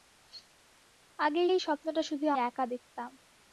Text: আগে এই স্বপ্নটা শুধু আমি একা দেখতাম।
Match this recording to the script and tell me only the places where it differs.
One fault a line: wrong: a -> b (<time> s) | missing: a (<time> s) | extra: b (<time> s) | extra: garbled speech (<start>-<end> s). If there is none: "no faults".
extra: এই (1.5 s)
missing: আমি (2.3 s)